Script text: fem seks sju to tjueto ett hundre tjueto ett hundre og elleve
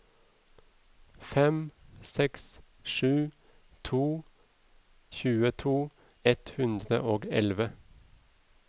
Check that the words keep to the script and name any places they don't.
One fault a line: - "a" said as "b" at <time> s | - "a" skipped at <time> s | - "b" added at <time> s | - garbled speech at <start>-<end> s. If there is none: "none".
- "tjueto ett hundre" skipped at 7.0 s